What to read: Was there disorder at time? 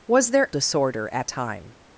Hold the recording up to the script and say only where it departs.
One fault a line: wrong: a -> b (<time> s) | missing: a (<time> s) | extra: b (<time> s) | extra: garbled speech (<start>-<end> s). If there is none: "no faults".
no faults